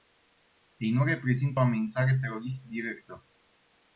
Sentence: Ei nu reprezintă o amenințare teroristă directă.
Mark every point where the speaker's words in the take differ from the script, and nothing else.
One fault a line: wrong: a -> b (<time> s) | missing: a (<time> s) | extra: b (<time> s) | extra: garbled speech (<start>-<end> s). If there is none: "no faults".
no faults